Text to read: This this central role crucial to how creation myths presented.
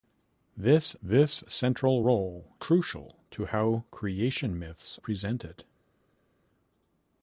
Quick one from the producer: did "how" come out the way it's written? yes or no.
yes